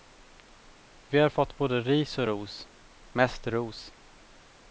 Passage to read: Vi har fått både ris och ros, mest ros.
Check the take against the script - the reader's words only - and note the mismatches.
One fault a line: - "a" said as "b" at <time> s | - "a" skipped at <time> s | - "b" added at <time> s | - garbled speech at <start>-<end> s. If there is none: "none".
none